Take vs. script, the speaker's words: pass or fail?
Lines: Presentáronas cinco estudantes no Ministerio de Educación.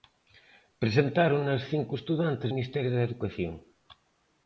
fail